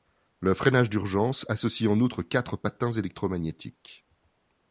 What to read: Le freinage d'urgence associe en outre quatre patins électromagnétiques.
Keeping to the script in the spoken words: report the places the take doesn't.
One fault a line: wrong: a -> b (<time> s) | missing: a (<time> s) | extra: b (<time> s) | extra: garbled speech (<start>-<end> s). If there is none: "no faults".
no faults